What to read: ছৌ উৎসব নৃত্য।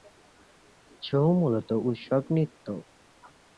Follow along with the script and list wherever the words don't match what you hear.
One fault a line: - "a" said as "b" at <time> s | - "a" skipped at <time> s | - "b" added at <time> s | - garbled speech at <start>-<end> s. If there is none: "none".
- "মূলত" added at 1.4 s